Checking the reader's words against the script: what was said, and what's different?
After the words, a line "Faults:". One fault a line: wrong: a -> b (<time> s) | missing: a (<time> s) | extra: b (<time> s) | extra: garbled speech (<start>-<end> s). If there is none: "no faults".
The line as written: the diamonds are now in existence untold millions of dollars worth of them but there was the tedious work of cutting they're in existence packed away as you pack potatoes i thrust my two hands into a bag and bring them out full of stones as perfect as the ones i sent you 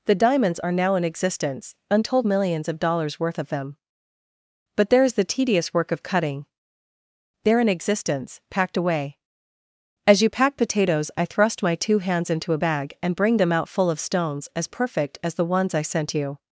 the diamonds are now in existence untold millions of dollars worth of them but there is the tedious work of cutting they're in existence packed away as you pack potatoes i thrust my two hands into a bag and bring them out full of stones as perfect as the ones i sent you
Faults:
wrong: was -> is (5.0 s)